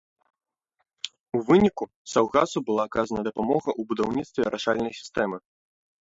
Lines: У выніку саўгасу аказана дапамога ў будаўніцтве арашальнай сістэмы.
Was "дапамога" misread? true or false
false